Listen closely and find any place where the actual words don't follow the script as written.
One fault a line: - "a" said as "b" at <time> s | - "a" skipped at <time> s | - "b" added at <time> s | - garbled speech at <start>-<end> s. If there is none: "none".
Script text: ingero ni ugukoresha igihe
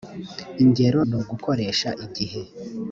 none